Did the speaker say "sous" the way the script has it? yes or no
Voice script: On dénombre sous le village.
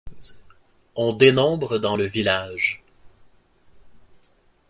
no